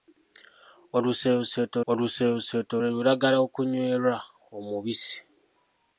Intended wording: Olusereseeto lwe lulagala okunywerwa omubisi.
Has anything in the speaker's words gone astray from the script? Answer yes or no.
yes